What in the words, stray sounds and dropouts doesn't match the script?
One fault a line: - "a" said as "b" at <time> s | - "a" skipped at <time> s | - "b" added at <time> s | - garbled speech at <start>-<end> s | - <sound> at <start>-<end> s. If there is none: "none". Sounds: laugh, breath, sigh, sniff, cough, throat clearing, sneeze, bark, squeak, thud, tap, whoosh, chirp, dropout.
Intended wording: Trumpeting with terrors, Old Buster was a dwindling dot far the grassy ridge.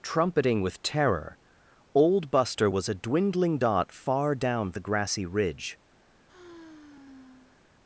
- "terrors" said as "terror" at 0.8 s
- "down" added at 4.3 s
- sigh at 6.3-7.6 s